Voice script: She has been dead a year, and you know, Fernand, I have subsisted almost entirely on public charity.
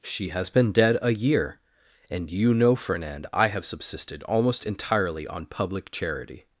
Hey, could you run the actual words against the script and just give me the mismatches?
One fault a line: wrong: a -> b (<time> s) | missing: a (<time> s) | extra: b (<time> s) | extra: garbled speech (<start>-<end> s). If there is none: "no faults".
no faults